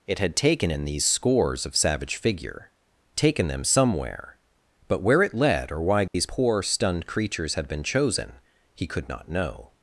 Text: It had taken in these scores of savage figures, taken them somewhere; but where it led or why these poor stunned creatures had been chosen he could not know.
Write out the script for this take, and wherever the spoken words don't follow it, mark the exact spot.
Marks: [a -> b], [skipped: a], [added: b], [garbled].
It had taken in these scores of savage [figures, -> figure] taken them somewhere; but where it led or why these poor stunned creatures had been chosen he could not know.